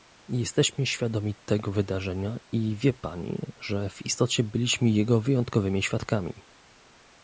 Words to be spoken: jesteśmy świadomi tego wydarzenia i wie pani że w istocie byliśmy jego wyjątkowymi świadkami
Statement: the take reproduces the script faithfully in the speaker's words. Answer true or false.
true